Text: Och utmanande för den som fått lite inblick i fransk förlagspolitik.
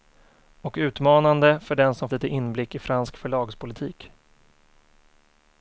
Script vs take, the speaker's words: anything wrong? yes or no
yes